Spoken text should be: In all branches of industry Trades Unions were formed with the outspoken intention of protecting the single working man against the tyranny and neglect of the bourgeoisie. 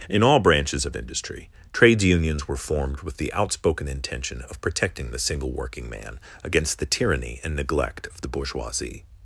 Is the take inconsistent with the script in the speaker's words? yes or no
no